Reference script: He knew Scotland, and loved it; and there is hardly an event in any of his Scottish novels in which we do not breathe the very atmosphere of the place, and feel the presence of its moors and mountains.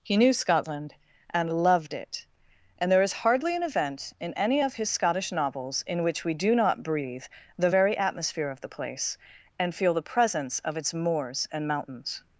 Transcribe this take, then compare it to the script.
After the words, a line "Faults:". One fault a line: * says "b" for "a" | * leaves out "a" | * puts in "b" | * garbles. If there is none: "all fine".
He knew Scotland, and loved it; and there is hardly an event in any of his Scottish novels in which we do not breathe the very atmosphere of the place, and feel the presence of its moors and mountains.
Faults:
all fine